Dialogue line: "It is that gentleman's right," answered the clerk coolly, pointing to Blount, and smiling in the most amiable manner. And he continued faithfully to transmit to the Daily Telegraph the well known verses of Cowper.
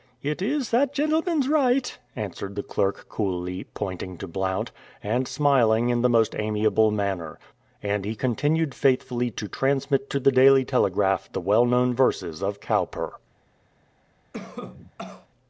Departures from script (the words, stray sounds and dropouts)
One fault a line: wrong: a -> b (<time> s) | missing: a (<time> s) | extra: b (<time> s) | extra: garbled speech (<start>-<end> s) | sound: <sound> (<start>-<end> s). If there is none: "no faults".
sound: cough (14.3-15.3 s)